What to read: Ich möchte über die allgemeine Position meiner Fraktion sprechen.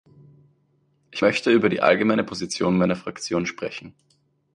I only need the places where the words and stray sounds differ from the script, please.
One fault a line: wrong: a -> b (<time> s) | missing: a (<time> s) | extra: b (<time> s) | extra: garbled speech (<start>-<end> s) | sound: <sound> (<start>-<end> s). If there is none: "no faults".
no faults